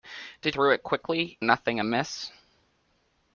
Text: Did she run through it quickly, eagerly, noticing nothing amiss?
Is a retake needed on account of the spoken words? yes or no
yes